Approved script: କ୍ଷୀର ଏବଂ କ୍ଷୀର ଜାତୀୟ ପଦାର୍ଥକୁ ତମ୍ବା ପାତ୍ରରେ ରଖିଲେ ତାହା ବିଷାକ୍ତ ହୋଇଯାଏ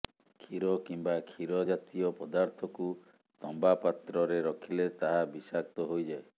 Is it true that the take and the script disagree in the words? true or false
true